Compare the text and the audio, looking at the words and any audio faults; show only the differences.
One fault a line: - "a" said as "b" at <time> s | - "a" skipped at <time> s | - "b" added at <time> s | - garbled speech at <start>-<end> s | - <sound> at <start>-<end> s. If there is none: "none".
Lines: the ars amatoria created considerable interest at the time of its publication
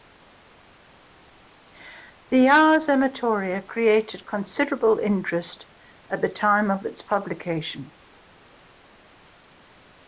none